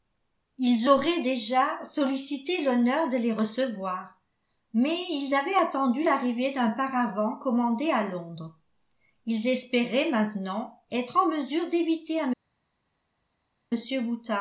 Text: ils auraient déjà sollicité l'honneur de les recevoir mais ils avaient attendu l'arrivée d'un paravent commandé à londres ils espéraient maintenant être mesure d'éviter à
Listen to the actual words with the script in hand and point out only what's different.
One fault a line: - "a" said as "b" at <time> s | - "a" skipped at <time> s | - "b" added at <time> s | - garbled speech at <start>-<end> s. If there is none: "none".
- "en" added at 11.2 s